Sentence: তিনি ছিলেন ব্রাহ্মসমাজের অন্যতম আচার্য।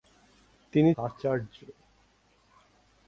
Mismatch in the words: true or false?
true